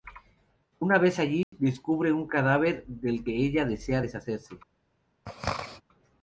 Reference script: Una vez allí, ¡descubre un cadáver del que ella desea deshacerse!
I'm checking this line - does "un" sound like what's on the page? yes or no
yes